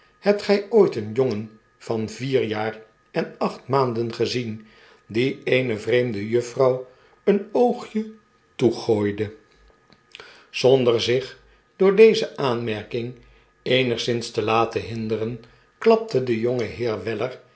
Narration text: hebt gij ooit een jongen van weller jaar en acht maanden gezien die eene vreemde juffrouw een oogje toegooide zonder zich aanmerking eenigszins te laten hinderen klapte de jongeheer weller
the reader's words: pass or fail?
fail